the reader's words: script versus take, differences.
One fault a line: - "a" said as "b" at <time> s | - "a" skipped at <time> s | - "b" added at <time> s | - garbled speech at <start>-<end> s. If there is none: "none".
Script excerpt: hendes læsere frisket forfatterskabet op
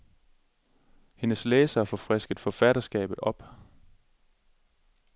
- "får" added at 1.9 s